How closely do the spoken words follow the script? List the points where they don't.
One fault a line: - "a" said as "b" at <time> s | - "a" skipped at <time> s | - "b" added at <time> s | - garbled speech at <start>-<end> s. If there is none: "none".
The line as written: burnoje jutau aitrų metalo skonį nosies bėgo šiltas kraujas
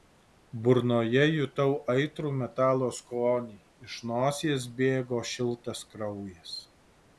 - "iš" added at 3.9 s